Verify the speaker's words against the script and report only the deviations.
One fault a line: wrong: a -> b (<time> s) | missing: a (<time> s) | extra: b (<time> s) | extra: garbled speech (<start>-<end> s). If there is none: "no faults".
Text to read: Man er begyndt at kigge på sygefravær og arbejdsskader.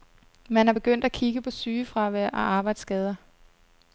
no faults